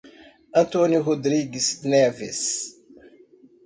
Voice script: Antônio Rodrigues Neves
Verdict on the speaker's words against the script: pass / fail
pass